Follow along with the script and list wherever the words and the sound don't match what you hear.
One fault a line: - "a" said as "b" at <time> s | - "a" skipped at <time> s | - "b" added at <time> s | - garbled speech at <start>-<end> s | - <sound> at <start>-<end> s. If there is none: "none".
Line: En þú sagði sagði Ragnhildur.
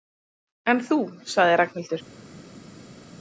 - "sagði" skipped at 1.6 s